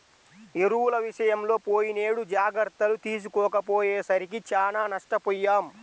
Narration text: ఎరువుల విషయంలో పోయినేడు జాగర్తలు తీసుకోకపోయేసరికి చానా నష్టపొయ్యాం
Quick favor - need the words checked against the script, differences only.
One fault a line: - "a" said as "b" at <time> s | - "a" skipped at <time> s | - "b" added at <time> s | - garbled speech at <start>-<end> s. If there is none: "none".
none